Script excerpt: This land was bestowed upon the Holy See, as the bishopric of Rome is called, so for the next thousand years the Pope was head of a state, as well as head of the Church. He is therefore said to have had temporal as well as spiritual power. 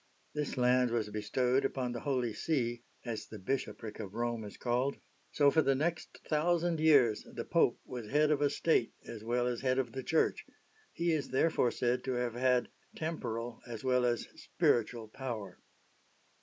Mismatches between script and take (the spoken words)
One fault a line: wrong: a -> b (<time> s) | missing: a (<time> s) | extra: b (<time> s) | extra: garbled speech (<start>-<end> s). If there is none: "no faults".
no faults